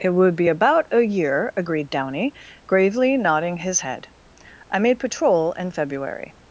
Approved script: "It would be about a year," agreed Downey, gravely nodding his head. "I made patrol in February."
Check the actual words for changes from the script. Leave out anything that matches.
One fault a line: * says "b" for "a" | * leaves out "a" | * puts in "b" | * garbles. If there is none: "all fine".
all fine